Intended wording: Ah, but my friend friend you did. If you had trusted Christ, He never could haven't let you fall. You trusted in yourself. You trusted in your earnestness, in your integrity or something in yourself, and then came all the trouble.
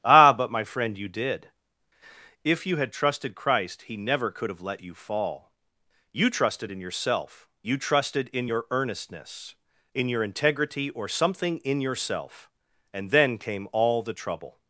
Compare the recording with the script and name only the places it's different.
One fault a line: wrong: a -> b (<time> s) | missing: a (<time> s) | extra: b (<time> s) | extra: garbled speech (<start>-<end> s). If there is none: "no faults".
missing: friend (1.0 s)
wrong: haven't -> have (4.5 s)